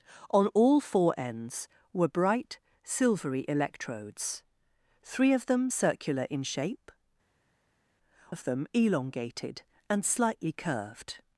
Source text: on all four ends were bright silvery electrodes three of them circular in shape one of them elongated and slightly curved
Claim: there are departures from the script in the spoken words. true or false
true